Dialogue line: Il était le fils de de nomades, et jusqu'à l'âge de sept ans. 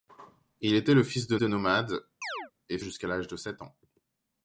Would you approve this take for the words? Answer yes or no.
yes